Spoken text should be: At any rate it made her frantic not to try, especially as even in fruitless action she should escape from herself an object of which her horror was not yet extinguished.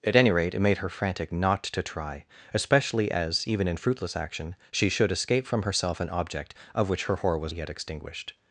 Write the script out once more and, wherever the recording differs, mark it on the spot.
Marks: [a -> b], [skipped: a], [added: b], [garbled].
At any rate it made her frantic not to try, especially as even in fruitless action she should escape from herself an object of which her horror was [skipped: not] yet extinguished.